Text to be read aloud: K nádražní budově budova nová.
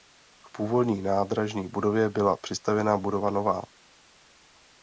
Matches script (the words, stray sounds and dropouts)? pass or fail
fail